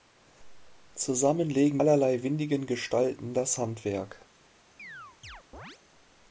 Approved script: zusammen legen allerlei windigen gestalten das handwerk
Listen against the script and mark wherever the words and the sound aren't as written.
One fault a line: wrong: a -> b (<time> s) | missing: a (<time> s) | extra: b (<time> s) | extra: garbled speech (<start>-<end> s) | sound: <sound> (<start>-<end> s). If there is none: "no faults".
sound: chirp (4.8-5.8 s)